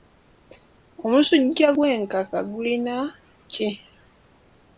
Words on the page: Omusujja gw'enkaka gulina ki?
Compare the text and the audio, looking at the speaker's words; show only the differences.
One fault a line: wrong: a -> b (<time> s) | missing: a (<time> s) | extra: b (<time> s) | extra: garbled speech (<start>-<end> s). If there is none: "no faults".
no faults